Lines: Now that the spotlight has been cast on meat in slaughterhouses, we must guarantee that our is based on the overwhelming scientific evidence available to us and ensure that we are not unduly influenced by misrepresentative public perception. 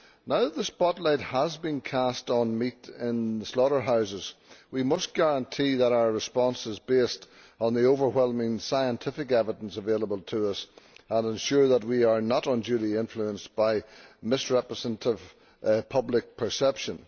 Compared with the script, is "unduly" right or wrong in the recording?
right